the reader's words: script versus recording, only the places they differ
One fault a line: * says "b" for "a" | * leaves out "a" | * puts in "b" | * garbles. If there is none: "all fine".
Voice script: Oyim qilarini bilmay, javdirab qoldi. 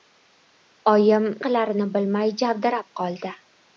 all fine